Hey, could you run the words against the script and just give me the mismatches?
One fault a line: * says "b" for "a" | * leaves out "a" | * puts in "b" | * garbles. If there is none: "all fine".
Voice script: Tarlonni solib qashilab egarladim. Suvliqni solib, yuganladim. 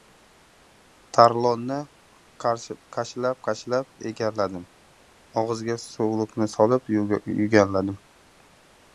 * says "qashilab" for "solib"
* puts in "Og‘ziga"